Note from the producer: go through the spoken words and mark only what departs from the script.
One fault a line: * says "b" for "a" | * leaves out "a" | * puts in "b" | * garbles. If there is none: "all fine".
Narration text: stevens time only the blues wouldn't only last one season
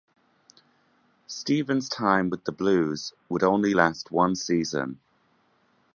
* says "with" for "only"
* says "would" for "wouldn't"